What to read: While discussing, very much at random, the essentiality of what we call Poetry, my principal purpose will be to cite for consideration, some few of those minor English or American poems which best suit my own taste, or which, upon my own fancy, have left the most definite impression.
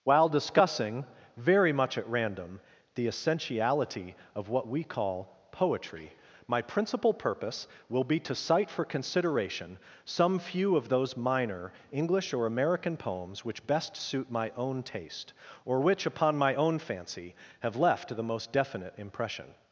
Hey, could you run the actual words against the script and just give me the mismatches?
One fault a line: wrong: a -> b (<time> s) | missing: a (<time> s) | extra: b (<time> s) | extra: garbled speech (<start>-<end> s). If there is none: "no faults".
no faults